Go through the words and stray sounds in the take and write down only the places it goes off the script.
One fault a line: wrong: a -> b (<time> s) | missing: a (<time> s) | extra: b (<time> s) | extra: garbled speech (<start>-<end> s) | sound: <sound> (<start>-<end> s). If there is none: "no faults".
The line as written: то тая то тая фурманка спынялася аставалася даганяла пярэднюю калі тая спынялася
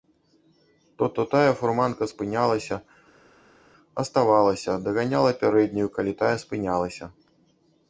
missing: тая (1.1 s)